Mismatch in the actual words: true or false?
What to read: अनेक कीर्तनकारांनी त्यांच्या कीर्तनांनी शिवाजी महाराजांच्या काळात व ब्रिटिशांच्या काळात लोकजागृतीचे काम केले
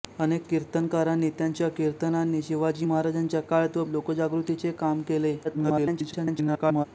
true